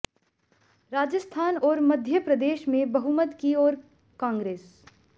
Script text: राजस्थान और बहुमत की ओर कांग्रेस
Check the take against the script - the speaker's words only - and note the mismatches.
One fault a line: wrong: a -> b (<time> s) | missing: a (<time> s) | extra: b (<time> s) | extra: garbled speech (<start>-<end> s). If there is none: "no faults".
extra: मध्य प्रदेश में (1.8 s)